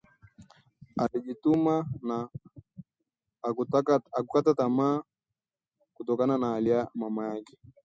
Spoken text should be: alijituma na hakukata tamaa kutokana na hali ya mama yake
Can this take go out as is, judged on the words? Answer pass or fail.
pass